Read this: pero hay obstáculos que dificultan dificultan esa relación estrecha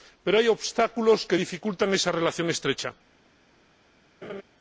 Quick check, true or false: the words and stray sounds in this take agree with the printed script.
false